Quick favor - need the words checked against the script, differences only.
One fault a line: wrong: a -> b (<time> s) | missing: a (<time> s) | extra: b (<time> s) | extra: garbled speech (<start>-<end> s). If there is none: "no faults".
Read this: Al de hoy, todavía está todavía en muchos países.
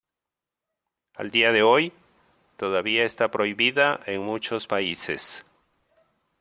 extra: día (1.3 s)
wrong: todavía -> prohibida (3.3 s)